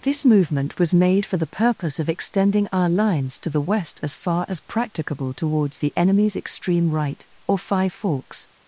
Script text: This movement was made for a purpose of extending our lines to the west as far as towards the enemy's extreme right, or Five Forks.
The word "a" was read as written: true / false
false